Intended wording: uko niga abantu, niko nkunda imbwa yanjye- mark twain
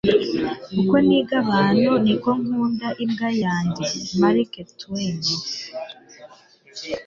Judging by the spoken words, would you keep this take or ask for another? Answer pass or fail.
pass